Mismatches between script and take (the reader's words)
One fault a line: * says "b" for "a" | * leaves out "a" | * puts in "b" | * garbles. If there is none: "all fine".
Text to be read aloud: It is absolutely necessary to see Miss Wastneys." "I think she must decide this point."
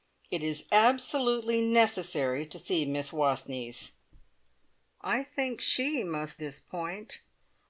* leaves out "decide"